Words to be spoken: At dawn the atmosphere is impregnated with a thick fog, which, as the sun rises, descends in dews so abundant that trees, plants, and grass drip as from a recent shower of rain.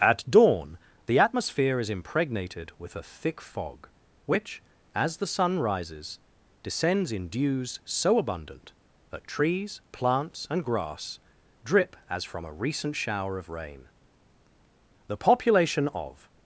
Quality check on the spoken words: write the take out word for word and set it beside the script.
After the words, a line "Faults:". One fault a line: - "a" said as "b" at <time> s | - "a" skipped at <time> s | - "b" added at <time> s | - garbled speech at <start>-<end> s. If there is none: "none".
At dawn the atmosphere is impregnated with a thick fog, which, as the sun rises, descends in dews so abundant that trees, plants, and grass drip as from a recent shower of rain. The population of
Faults:
- "The population of" added at 15.1 s